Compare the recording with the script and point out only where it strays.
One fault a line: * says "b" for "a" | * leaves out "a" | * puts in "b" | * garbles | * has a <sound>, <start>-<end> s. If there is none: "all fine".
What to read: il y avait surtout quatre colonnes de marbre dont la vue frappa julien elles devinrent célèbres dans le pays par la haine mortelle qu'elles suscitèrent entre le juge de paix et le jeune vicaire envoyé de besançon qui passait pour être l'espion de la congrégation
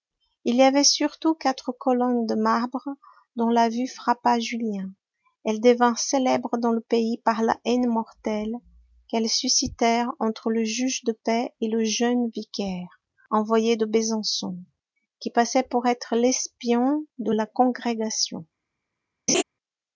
* has a laugh, 19.3-19.4 s